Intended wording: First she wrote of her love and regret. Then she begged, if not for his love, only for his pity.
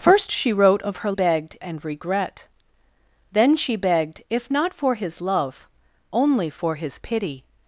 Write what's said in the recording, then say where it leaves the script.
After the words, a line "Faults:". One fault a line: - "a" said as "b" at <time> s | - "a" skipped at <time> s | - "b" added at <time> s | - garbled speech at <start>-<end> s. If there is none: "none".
First she wrote of her begged and regret. Then she begged, if not for his love, only for his pity.
Faults:
- "love" said as "begged" at 1.1 s